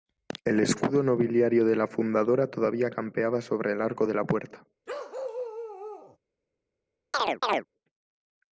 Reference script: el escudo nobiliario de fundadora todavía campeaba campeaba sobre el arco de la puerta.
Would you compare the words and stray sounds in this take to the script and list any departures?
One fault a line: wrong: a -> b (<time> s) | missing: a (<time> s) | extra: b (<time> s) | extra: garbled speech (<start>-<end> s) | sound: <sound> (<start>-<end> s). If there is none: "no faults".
extra: la (1.8 s)
missing: campeaba (3.4 s)
sound: bark (4.9-6.2 s)
sound: chirp (7.1-7.7 s)